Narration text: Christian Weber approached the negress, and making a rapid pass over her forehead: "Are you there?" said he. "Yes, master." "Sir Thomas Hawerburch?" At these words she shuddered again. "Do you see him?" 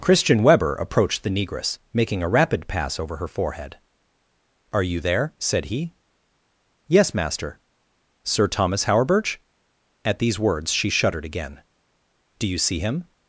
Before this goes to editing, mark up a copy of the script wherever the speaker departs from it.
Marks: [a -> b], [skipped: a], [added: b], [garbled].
Christian Weber approached the negress, [skipped: and] making a rapid pass over her forehead: "Are you there?" said he. "Yes, master." "Sir Thomas Hawerburch?" At these words she shuddered again. "Do you see him?"